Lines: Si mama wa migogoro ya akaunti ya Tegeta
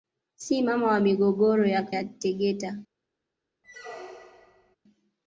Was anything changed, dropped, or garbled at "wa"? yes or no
no